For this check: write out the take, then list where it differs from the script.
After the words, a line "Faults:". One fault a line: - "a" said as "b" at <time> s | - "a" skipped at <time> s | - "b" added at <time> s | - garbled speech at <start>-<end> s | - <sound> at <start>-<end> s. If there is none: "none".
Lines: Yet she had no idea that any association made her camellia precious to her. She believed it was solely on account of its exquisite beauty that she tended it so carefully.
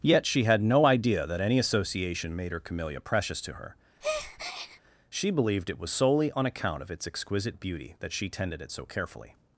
Yet she had no idea that any association made her camellia precious to her. She believed it was solely on account of its exquisite beauty that she tended it so carefully.
Faults:
- breath at 4.0-4.8 s